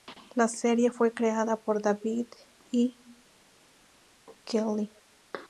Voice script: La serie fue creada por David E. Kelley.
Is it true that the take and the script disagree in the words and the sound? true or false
false